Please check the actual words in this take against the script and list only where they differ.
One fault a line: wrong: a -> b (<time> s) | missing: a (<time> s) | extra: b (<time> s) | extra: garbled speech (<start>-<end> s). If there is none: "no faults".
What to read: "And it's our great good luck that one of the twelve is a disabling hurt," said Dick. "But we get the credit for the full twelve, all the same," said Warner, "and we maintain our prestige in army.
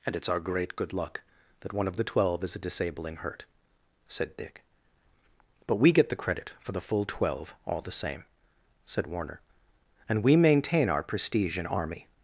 no faults